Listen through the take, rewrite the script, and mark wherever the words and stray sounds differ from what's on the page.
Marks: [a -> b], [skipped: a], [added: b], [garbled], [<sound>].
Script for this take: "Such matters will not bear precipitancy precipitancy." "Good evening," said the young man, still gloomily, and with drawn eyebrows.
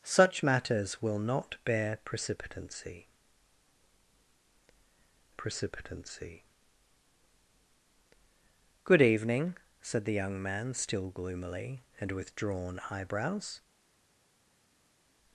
"Such matters will not bear precipitancy precipitancy." "Good evening," said the young man, still gloomily, and with drawn eyebrows.